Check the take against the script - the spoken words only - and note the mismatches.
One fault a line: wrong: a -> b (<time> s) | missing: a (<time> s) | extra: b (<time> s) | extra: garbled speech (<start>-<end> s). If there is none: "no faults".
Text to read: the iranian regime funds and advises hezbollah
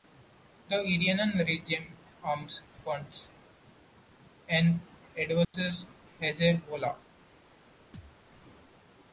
extra: arms (2.2 s)